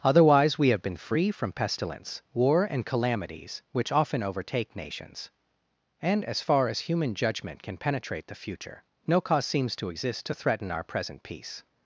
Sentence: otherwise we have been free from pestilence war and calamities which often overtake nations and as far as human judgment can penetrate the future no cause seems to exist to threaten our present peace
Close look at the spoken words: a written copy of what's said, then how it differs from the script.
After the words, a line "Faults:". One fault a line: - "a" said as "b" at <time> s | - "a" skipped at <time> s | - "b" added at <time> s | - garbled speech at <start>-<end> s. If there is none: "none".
otherwise we have been free from pestilence war and calamities which often overtake nations and as far as human judgment can penetrate the future no cause seems to exist to threaten our present peace
Faults:
none